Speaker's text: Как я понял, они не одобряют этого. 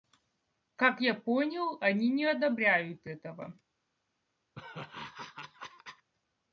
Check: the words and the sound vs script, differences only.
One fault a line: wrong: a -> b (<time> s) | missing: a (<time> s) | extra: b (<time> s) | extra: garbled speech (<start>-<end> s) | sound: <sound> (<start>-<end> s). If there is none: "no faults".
sound: laugh (4.5-6.1 s)